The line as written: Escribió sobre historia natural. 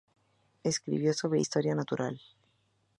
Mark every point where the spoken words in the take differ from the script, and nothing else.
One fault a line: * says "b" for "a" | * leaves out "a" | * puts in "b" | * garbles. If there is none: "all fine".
all fine